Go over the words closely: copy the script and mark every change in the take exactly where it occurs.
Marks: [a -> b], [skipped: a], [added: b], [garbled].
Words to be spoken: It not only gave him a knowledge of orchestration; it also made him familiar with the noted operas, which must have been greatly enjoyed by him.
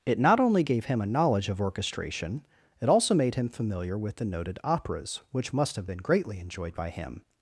It not only gave him a knowledge of orchestration; it also made him familiar with the noted operas, which must have been greatly enjoyed by him.